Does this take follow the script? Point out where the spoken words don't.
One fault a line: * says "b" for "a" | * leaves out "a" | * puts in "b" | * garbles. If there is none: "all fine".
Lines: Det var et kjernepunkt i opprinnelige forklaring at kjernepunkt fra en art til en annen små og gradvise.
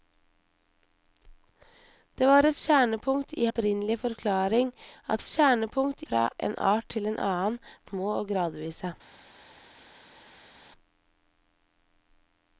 all fine